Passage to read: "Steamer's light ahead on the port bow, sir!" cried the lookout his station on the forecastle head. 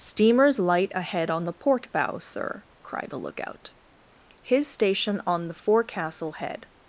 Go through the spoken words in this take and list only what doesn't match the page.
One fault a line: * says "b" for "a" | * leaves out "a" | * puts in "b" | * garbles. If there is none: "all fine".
all fine